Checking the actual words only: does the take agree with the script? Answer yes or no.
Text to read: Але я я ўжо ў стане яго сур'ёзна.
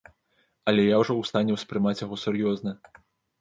no